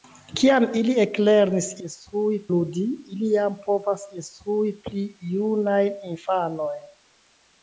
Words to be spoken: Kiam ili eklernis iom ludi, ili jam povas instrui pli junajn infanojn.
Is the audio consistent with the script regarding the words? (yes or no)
no